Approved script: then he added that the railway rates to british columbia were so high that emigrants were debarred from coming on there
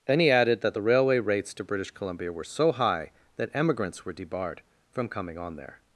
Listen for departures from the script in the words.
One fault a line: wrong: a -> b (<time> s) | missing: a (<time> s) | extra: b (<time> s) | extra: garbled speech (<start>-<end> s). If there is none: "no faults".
no faults